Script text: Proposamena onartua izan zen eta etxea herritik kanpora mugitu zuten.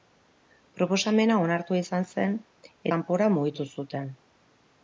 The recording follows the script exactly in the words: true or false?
false